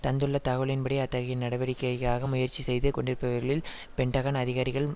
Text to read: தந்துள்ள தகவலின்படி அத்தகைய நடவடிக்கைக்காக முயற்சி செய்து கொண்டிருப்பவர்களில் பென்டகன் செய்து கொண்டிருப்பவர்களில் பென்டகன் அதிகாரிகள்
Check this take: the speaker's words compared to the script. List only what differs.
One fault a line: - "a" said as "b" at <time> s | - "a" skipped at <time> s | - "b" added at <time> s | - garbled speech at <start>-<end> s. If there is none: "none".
- "செய்து கொண்டிருப்பவர்களில் பென்டகன்" skipped at 4.4 s